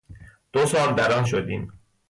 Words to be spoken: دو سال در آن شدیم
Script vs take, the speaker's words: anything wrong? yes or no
no